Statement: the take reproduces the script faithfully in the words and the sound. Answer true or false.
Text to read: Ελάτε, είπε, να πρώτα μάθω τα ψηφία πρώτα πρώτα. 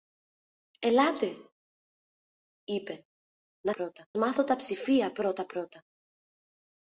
true